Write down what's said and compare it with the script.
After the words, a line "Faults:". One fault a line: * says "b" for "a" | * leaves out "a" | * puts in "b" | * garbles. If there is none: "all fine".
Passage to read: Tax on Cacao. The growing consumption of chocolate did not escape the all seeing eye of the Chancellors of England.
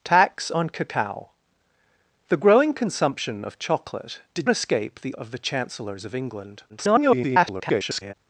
Tax on Cacao. The growing consumption of chocolate did escape the of the Chancellors of England. [garbled]
Faults:
* leaves out "not"
* leaves out "all seeing eye"
* garbles